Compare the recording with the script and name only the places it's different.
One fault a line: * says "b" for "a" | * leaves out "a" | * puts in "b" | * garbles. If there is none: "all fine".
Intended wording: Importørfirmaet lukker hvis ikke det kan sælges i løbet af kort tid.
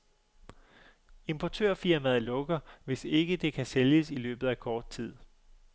all fine